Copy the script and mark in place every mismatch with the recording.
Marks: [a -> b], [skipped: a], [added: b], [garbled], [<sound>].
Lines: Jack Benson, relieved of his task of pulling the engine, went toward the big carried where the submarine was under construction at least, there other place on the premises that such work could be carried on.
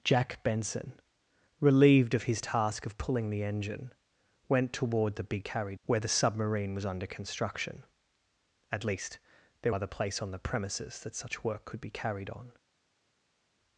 Jack Benson, relieved of his task of pulling the engine, went toward the big carried where the submarine was under construction at least, there other place on the premises that such work could be carried on.